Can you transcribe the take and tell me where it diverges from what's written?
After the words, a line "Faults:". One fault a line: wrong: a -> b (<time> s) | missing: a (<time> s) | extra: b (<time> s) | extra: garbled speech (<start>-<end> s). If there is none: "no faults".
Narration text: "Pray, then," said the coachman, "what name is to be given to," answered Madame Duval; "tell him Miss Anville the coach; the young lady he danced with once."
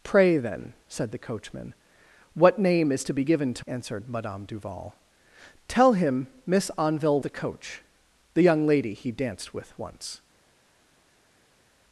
"Pray, then," said the coachman, "what name is to be given to," answered Madame Duval; "tell him Miss Anville the coach; the young lady he danced with once."
Faults:
no faults